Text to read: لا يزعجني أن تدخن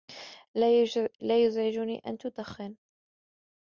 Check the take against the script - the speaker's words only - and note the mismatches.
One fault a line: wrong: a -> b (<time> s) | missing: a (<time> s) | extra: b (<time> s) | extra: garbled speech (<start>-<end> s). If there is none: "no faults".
no faults